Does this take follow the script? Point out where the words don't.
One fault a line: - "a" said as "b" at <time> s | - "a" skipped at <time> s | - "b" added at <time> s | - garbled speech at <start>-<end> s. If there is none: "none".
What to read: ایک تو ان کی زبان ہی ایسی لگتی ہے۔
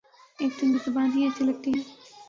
none